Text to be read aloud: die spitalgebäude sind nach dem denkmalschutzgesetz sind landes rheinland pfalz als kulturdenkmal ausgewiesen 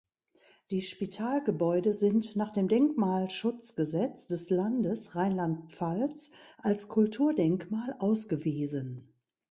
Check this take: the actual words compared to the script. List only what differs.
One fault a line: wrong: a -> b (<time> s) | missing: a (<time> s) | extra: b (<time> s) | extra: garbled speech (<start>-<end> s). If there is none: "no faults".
wrong: sind -> des (4.3 s)